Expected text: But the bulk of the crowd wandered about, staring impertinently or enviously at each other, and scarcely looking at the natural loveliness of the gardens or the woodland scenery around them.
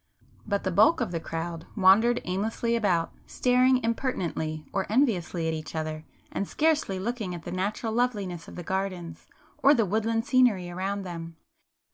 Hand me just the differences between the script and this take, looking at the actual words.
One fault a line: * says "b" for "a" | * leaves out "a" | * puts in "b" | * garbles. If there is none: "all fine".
* puts in "aimlessly"